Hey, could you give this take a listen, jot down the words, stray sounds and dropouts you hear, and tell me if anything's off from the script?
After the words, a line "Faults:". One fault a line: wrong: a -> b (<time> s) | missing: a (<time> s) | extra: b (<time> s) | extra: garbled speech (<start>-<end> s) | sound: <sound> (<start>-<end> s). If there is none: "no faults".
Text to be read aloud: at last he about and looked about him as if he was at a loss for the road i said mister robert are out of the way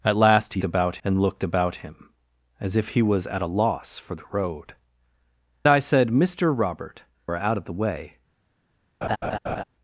at last he about and looked about him as if he was at a loss for the road i said mister robert are out of the way
Faults:
sound: laugh (9.0-9.6 s)